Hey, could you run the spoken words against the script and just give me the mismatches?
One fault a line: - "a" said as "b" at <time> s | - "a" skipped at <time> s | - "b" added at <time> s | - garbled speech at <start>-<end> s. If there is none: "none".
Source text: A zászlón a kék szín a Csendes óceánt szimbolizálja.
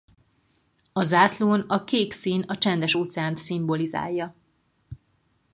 none